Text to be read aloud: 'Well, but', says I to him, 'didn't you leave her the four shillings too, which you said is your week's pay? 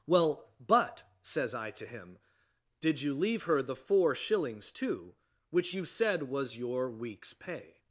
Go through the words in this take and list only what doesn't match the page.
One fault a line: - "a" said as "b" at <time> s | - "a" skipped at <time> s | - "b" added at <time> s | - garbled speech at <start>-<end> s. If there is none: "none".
- "didn't" said as "did" at 2.8 s
- "is" said as "was" at 6.2 s